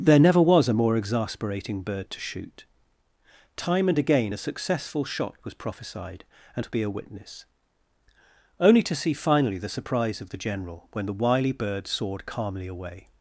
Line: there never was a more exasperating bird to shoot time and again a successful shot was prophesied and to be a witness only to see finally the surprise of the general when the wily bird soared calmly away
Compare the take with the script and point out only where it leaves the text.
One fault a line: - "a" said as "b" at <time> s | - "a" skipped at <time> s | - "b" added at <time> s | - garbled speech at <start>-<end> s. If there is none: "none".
none